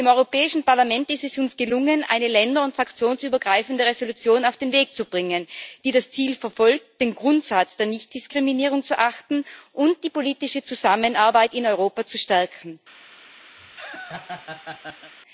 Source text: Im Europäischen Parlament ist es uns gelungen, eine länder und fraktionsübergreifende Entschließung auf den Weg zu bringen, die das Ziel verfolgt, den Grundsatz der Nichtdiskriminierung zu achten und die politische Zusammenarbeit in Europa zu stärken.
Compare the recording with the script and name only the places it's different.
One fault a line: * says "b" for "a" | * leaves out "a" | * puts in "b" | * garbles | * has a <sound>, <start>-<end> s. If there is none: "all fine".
* has a laugh, 13.6-15.1 s